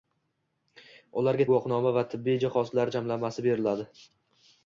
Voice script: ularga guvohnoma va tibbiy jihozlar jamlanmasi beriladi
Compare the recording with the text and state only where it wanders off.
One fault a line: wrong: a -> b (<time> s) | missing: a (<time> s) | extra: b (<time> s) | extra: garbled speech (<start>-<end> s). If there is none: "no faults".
no faults